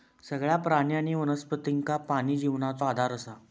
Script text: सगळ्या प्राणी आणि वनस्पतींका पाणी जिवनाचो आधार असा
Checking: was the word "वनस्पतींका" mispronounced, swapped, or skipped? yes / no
no